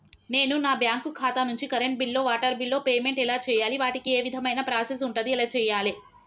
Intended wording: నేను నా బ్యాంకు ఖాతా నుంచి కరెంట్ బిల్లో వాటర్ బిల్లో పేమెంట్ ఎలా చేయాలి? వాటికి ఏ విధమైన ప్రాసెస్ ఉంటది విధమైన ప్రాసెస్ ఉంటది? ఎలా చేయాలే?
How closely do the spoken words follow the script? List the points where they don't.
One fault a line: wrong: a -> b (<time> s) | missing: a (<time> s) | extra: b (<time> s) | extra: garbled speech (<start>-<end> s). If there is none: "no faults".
missing: విధమైన ప్రాసెస్ ఉంటది (5.3 s)